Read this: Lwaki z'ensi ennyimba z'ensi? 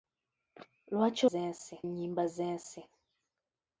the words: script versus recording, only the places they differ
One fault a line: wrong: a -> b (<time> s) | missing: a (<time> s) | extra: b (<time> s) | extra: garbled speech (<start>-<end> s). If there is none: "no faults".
no faults